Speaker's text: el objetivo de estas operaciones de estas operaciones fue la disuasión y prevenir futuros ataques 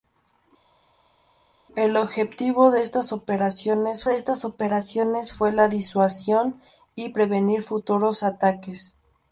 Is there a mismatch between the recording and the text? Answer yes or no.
no